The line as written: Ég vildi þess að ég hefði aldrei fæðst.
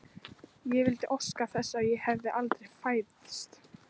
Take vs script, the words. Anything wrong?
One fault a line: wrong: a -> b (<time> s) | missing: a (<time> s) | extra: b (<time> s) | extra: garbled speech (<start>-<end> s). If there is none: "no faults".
extra: óska (1.2 s)